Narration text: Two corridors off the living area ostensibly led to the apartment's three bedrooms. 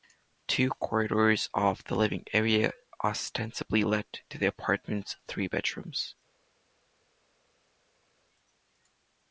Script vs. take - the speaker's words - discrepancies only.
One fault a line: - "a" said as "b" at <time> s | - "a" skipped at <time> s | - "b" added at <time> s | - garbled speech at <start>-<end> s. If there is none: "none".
none